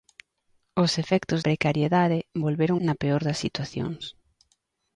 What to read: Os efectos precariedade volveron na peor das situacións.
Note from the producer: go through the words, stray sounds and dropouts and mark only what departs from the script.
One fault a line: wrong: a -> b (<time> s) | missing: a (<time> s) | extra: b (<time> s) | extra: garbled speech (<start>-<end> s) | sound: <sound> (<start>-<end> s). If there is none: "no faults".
no faults